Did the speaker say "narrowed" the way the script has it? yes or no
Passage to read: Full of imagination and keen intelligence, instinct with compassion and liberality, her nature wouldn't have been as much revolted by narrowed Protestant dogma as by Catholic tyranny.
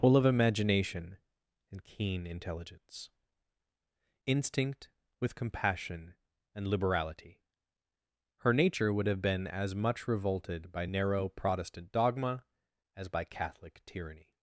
no